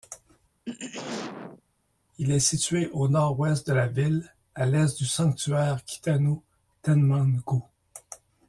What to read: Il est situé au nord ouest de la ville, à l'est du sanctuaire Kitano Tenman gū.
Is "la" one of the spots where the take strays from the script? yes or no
no